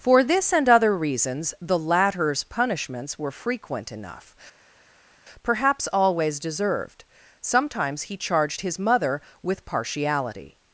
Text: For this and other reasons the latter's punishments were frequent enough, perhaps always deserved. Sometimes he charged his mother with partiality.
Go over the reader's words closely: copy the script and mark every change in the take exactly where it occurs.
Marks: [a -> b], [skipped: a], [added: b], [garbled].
For this and other reasons the latter's punishments were frequent enough, perhaps always deserved. Sometimes he charged his mother with partiality.